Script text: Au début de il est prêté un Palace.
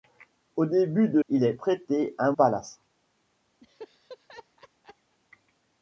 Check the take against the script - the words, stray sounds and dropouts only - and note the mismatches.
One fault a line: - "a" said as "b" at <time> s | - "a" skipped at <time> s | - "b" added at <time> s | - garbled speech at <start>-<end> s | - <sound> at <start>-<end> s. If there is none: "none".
- laugh at 3.6-5.2 s